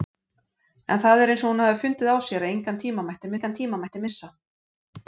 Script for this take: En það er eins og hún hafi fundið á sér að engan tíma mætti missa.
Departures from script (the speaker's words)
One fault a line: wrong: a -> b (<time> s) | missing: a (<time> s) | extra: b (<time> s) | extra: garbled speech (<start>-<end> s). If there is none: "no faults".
extra: engan tíma mætti (3.3 s)